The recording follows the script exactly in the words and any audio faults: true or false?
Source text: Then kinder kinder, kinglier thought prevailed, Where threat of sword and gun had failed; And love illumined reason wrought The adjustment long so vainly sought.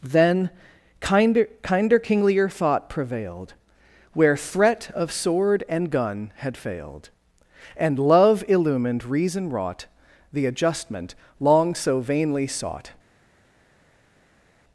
true